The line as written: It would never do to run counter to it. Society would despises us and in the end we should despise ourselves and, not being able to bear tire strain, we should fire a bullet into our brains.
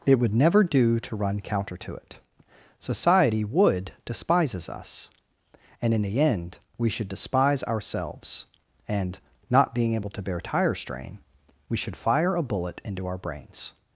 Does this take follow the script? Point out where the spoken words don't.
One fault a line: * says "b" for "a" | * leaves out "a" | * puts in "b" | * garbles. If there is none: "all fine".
all fine